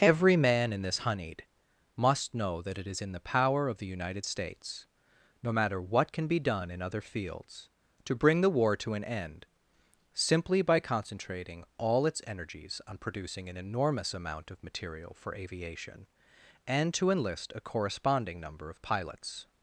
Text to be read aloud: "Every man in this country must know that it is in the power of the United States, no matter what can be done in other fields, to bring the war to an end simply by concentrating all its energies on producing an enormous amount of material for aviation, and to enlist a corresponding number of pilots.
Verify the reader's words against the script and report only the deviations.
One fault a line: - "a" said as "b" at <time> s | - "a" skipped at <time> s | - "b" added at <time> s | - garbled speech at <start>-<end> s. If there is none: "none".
- "country" said as "honeyed" at 1.0 s